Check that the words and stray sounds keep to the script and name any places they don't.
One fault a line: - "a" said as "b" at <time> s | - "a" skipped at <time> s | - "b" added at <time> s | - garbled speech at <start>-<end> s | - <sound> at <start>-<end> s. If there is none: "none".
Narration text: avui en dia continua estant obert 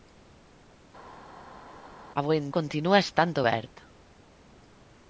- "dia" skipped at 2.5 s